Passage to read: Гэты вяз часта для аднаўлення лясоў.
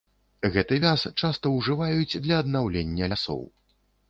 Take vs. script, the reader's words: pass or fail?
fail